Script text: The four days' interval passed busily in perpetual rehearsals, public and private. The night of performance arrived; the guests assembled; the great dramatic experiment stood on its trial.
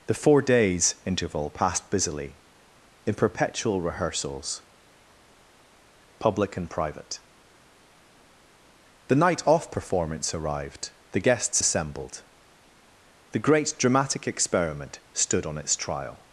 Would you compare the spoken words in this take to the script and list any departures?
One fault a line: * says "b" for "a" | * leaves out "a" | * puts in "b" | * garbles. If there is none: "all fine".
* says "off" for "of"